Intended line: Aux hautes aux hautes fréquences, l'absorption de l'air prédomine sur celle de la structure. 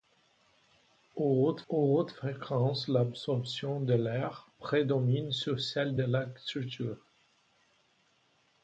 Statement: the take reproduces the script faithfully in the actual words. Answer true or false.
true